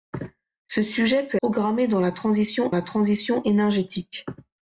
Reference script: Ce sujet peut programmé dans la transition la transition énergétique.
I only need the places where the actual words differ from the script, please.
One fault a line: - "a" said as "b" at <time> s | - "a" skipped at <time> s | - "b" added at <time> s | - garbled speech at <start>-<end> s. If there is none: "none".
none